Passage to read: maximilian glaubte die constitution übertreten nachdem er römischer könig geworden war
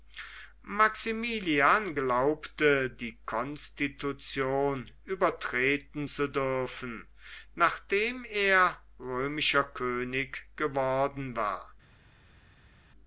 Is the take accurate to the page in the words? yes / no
no